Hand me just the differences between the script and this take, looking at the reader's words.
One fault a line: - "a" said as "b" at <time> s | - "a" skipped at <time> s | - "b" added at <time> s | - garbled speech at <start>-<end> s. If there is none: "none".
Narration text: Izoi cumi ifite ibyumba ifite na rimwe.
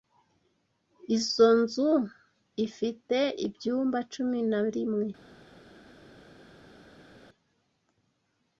- "cumi" said as "nzu" at 1.6 s
- "ifite" said as "cumi" at 4.1 s